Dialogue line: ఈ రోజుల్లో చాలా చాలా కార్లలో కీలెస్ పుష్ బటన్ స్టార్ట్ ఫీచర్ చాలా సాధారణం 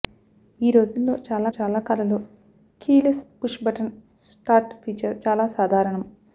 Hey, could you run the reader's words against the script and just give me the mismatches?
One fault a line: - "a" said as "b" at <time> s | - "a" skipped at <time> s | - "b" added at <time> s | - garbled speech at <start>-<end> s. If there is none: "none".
none